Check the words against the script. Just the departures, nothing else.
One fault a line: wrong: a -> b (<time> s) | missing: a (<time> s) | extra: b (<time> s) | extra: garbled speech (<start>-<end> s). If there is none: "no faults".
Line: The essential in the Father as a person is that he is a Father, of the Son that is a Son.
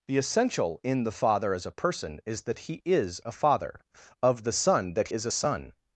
no faults